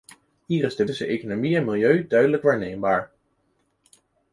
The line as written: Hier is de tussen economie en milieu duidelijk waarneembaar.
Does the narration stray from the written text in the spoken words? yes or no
no